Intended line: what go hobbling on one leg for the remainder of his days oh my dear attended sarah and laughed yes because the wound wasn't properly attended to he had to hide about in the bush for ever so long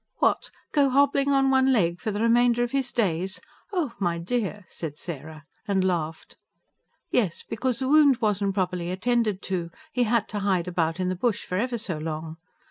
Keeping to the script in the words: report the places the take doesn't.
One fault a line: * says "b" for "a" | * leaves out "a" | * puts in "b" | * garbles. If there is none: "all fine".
* says "said" for "attended"